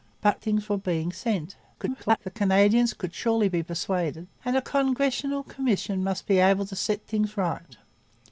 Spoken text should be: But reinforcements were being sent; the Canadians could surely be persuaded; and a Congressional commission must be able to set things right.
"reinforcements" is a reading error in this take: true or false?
true